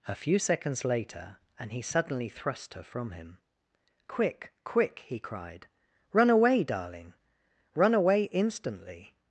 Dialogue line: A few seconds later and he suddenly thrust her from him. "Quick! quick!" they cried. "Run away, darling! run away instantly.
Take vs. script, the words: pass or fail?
fail